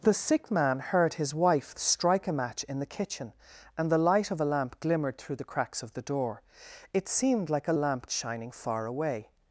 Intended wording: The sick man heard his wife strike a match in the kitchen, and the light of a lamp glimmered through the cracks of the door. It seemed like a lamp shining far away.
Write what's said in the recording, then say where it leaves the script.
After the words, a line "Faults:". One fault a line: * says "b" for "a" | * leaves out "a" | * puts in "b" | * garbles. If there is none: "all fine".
The sick man heard his wife strike a match in the kitchen, and the light of a lamp glimmered through the cracks of the door. It seemed like a lamp shining far away.
Faults:
all fine